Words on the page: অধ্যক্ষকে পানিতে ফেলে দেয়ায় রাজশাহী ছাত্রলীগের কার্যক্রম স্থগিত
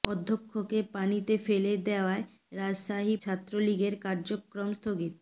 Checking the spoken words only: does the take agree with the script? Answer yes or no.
yes